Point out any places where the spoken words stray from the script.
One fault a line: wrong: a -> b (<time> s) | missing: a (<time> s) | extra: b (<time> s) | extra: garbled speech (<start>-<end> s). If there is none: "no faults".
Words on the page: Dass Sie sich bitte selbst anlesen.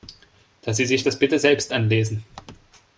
extra: das (1.0 s)